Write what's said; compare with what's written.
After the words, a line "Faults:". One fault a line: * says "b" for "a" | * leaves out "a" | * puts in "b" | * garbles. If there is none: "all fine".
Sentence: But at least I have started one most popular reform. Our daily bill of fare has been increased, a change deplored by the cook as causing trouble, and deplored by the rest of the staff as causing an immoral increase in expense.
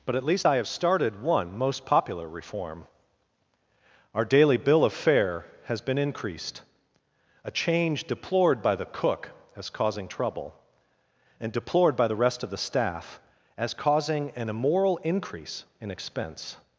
But at least I have started one most popular reform. Our daily bill of fare has been increased, a change deplored by the cook as causing trouble, and deplored by the rest of the staff as causing an immoral increase in expense.
Faults:
all fine